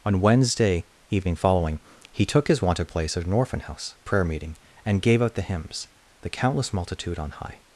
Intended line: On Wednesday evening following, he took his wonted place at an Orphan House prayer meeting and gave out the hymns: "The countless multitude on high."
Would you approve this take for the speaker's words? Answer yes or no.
yes